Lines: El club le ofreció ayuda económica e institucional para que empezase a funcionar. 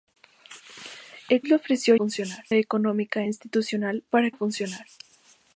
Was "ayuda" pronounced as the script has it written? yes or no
no